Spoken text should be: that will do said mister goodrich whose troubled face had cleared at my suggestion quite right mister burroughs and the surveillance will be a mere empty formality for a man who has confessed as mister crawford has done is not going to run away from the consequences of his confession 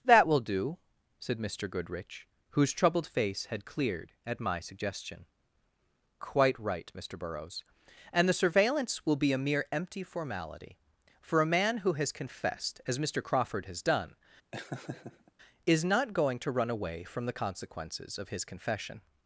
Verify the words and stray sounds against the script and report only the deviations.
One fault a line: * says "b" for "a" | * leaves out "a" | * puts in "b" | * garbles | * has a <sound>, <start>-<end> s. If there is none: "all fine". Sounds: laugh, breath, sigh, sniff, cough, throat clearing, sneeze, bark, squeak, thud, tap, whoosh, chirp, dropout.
* has a laugh, 14.5-15.3 s